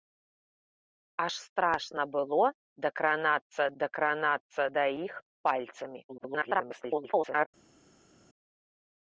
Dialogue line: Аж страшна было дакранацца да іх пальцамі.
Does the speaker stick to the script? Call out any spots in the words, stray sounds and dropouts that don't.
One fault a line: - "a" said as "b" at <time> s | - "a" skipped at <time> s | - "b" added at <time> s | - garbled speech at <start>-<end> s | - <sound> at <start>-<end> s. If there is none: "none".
- "дакранацца" added at 3.8 s
- garbled speech at 6.1-7.5 s